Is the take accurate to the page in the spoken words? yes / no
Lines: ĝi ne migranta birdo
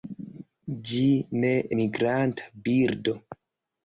yes